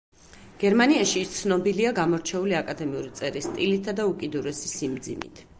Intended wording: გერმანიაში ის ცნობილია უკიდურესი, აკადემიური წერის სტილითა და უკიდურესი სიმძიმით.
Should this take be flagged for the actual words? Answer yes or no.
yes